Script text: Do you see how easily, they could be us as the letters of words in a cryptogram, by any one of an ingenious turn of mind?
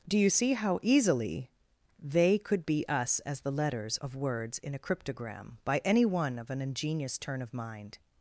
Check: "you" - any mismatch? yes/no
no